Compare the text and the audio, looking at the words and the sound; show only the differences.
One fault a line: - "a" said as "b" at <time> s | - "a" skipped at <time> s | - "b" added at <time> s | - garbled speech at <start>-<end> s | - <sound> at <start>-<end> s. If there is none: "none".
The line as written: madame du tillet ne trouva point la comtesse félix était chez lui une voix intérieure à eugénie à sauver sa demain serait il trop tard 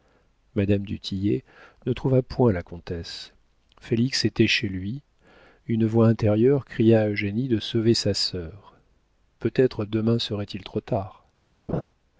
- "cria" added at 6.7 s
- "à" said as "de" at 7.5 s
- "sœur peut être" added at 8.2 s
- laugh at 11.7-11.8 s